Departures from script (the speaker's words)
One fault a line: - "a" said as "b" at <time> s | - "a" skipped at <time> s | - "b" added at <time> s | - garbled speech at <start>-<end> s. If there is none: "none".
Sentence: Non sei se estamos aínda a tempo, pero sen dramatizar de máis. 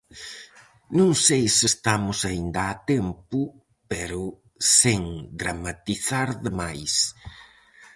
none